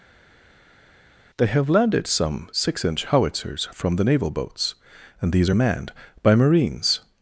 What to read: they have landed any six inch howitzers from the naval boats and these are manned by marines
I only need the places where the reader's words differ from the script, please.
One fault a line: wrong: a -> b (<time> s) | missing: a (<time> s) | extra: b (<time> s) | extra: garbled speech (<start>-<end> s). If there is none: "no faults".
wrong: any -> some (2.1 s)